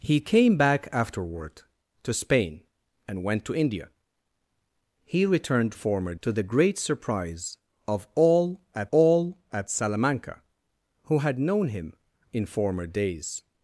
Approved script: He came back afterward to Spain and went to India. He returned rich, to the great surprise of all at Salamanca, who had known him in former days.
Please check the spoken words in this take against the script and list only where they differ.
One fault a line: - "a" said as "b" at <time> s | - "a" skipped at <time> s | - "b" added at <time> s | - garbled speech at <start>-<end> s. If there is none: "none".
- "rich" said as "former" at 5.7 s
- "all at" added at 8.9 s